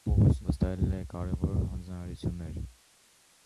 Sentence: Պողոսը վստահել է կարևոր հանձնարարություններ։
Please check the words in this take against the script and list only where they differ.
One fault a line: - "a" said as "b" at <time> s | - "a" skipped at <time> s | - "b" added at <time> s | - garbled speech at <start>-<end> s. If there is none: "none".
none